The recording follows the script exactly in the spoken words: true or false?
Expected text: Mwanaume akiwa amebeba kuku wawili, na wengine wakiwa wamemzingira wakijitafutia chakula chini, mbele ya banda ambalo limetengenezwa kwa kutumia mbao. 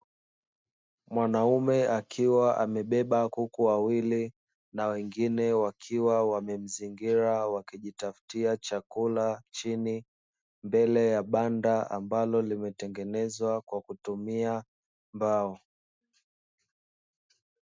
true